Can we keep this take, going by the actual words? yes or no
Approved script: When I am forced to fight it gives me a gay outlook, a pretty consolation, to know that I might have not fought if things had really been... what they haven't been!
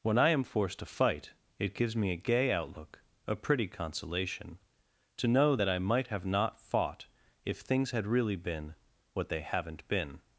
yes